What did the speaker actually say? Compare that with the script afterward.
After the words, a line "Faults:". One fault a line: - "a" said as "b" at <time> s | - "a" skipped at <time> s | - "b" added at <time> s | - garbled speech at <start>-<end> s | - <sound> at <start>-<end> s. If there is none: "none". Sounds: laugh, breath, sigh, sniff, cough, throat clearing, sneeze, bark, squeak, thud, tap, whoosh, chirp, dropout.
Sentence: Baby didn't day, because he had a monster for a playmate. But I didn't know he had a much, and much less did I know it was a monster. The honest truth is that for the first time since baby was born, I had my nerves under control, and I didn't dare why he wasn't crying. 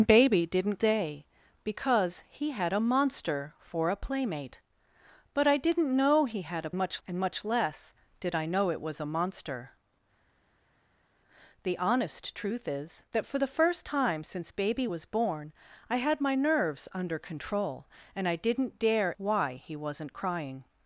Baby didn't day, because he had a monster for a playmate. But I didn't know he had a much, and much less did I know it was a monster. The honest truth is that for the first time since baby was born, I had my nerves under control, and I didn't dare why he wasn't crying.
Faults:
none